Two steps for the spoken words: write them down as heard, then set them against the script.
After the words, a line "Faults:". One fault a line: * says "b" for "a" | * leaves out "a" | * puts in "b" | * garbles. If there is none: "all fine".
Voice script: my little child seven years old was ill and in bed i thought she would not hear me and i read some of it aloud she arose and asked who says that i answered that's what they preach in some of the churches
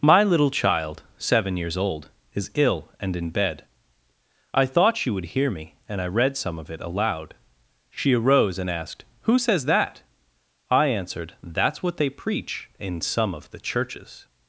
my little child seven years old is ill and in bed i thought she would hear me and i read some of it aloud she arose and asked who says that i answered that's what they preach in some of the churches
Faults:
* says "is" for "was"
* leaves out "not"